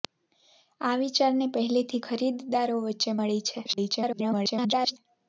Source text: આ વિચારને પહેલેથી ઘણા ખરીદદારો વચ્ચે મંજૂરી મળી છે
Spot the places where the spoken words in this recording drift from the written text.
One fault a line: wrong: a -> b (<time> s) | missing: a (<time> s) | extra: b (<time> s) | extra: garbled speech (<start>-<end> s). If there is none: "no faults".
missing: ઘણા (2.0 s)
missing: મંજૂરી (3.2 s)
extra: garbled speech (3.6-5.0 s)